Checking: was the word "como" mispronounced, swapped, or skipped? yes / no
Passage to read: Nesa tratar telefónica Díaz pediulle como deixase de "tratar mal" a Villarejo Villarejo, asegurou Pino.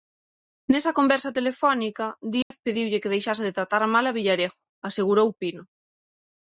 yes